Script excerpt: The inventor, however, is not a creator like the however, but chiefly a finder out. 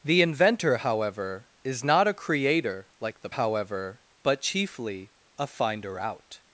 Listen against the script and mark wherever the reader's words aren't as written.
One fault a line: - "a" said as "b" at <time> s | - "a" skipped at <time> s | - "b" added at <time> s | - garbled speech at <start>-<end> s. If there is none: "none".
none